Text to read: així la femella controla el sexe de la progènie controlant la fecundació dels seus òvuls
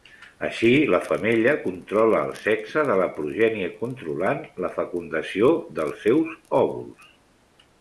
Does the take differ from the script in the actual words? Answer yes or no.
no